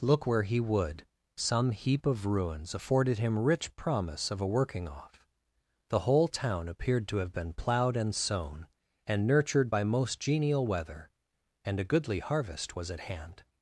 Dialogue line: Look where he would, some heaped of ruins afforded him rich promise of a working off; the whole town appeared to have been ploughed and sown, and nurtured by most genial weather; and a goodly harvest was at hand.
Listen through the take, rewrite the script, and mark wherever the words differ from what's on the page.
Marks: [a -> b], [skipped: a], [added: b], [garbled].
Look where he would, some [heaped -> heap] of ruins afforded him rich promise of a working off; the whole town appeared to have been ploughed and sown, and nurtured by most genial weather; and a goodly harvest was at hand.